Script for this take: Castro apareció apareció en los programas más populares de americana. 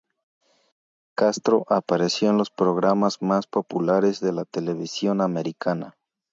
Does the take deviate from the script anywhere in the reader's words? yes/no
yes